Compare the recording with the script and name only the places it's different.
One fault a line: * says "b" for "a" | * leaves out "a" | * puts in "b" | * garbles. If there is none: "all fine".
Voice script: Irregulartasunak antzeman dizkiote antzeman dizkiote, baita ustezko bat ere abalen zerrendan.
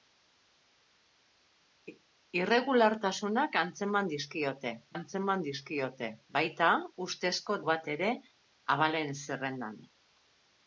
all fine